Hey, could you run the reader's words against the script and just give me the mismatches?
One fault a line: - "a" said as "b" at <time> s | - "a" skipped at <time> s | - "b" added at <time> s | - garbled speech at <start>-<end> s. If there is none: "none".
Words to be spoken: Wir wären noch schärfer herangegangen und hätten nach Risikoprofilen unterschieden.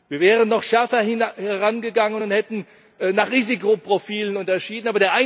none